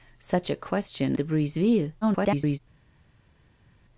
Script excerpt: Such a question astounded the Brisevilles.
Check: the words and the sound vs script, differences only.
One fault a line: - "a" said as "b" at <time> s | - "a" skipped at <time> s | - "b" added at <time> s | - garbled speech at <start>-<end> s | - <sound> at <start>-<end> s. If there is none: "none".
- "astounded" skipped at 1.1 s
- garbled speech at 2.0-2.6 s